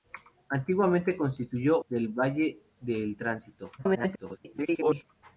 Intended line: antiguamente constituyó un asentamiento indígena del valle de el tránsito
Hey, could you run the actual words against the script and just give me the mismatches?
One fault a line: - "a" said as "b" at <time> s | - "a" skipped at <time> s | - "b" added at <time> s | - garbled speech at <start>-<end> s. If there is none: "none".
- "un asentamiento indígena" skipped at 1.8 s
- garbled speech at 3.8-5.0 s